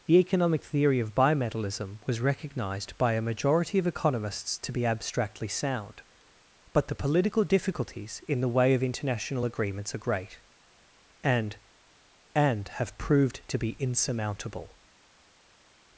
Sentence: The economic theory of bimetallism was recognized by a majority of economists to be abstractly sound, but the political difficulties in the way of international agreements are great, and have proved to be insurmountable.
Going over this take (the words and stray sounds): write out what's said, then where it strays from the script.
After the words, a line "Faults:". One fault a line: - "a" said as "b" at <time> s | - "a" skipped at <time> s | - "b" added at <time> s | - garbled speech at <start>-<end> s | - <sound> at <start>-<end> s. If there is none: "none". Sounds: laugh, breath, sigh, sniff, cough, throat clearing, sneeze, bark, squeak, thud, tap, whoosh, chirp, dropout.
The economic theory of bimetallism was recognized by a majority of economists to be abstractly sound, but the political difficulties in the way of international agreements are great, and and have proved to be insurmountable.
Faults:
- "and" added at 12.3 s